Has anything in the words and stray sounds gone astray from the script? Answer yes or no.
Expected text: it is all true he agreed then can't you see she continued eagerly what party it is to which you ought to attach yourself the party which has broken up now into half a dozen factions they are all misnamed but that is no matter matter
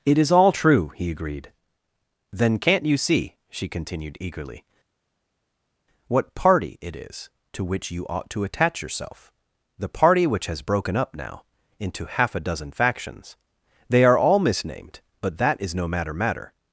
no